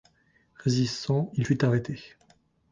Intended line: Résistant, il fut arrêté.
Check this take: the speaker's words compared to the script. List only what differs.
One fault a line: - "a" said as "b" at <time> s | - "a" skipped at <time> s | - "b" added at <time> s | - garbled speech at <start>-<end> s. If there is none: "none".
none